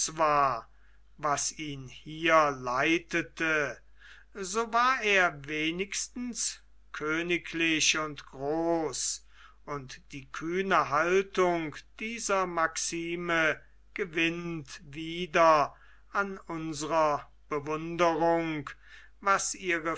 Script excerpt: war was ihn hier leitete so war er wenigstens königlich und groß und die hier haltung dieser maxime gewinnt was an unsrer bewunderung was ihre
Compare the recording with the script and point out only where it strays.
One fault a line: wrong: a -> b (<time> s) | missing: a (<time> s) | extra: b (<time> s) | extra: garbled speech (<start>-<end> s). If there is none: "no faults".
wrong: hier -> kühne (10.3 s)
wrong: was -> wieder (14.8 s)